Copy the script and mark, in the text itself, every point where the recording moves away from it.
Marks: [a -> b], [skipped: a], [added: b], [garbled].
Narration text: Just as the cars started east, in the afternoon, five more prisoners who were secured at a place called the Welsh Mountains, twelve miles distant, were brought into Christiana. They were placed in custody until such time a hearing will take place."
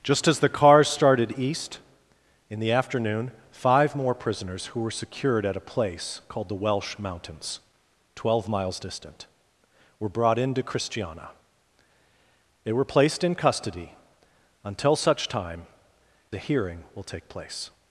Just as the cars started east, in the afternoon, five more prisoners who were secured at a place called the Welsh Mountains, twelve miles distant, were brought into Christiana. They were placed in custody until such time a hearing will take place."